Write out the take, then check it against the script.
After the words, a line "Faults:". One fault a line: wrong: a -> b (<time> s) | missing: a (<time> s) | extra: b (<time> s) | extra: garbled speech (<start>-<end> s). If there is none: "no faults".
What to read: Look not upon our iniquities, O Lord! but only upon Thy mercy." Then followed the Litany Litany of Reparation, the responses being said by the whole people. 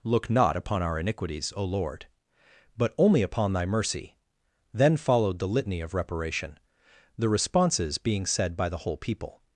Look not upon our iniquities, O Lord! but only upon Thy mercy." Then followed the Litany of Reparation, the responses being said by the whole people.
Faults:
missing: Litany (5.8 s)